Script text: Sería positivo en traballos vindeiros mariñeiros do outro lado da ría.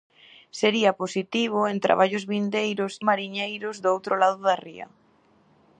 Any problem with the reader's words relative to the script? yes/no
no